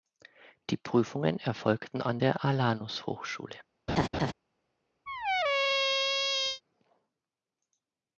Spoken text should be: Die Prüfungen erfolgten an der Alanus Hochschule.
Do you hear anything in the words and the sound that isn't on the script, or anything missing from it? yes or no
yes